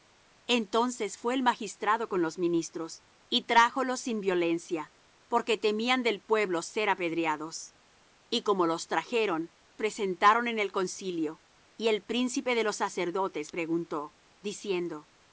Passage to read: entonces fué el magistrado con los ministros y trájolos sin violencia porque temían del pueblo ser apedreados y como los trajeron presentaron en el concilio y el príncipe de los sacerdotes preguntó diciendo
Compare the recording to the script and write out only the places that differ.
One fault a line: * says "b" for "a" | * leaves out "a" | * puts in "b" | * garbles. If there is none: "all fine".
all fine